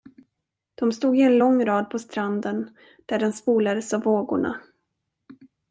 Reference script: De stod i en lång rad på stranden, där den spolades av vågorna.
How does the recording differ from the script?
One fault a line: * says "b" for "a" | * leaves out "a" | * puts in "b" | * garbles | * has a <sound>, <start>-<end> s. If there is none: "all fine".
all fine